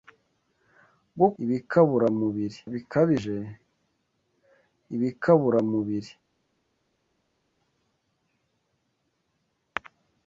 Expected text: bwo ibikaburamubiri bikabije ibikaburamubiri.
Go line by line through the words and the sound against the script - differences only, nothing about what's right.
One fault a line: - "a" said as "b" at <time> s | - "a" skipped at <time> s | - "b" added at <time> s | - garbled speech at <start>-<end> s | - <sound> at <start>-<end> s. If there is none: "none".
none